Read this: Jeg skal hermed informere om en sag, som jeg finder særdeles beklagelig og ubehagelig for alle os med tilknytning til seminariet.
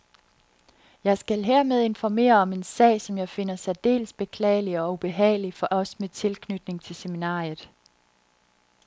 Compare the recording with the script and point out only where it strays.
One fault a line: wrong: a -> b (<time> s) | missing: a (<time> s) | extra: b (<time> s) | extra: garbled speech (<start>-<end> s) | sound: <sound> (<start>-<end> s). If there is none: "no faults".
missing: alle (5.7 s)